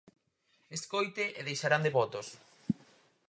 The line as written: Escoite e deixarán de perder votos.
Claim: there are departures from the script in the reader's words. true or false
true